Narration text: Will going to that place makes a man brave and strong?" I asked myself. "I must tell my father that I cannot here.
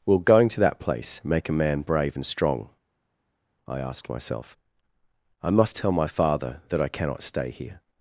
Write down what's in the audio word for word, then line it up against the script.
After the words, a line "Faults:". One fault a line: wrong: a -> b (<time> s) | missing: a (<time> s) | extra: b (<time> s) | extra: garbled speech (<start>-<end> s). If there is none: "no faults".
Will going to that place make a man brave and strong?" I asked myself. "I must tell my father that I cannot stay here.
Faults:
wrong: makes -> make (1.2 s)
extra: stay (7.2 s)